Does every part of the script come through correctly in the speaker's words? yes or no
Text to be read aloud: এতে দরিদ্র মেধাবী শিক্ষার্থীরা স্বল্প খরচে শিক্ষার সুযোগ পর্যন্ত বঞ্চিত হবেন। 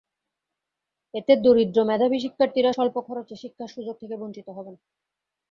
no